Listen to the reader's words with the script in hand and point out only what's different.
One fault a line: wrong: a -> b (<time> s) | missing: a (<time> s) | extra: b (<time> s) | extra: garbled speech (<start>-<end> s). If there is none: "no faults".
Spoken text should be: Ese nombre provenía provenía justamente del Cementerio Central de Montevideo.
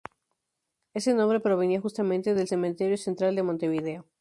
missing: provenía (1.8 s)